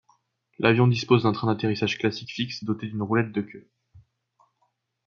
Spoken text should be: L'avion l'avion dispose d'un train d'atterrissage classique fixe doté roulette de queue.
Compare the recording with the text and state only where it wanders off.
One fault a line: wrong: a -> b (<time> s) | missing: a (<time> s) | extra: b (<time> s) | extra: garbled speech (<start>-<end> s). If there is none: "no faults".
missing: l'avion (0.9 s)
extra: d'une (2.9 s)